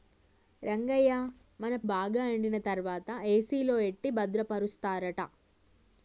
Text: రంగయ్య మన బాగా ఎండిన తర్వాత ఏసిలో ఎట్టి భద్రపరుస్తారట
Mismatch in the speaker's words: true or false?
false